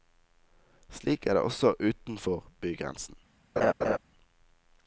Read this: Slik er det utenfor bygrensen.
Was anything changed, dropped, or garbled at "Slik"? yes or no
no